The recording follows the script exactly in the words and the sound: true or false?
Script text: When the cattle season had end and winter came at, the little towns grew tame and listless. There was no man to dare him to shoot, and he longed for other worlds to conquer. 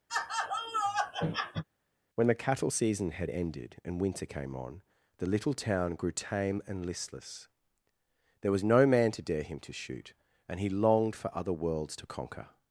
false